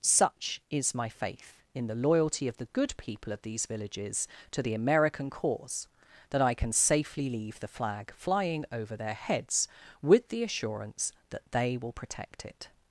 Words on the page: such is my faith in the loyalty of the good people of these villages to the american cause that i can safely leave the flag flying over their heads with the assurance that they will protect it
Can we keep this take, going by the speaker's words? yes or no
yes